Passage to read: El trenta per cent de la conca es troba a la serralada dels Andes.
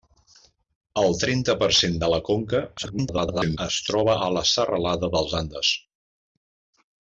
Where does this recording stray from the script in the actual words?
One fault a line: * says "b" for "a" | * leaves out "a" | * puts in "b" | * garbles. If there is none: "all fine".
* garbles